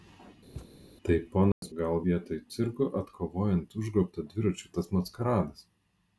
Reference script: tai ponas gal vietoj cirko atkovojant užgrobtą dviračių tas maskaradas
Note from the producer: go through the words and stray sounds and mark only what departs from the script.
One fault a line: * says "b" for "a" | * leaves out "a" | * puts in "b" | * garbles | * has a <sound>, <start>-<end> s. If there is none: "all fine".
* has a thud, 0.5-0.7 s
* has a dropout, 1.5-1.6 s